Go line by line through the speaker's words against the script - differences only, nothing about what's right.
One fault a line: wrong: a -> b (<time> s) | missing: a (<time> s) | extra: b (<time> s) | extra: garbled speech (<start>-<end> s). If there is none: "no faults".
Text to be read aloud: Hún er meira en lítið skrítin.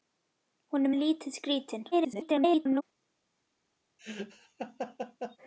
missing: meira (0.9 s)
extra: garbled speech (1.9-2.8 s)